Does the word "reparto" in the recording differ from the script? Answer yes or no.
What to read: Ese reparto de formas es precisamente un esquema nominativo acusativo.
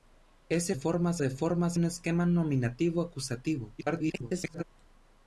yes